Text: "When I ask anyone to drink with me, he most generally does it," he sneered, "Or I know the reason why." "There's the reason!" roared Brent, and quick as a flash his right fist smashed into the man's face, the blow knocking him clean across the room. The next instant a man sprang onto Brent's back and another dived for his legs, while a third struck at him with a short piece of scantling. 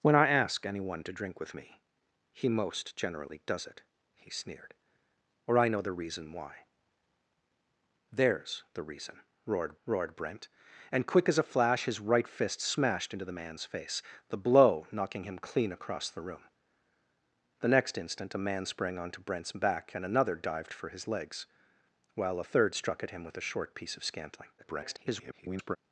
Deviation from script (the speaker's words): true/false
true